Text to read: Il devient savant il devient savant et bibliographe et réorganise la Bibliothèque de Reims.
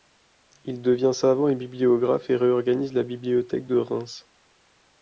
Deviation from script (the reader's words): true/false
true